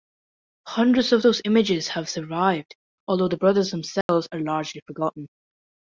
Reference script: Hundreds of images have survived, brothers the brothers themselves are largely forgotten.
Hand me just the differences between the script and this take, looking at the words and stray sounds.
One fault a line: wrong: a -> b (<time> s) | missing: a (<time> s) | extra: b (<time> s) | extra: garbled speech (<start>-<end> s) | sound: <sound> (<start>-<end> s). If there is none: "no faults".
extra: those (1.2 s)
wrong: brothers -> although (3.1 s)
sound: dropout (4.0-4.1 s)